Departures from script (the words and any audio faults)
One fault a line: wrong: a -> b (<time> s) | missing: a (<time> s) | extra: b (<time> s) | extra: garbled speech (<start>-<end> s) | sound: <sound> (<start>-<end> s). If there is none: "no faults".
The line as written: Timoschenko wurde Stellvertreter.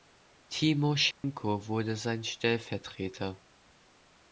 sound: dropout (1.1-1.2 s)
extra: sein (1.9 s)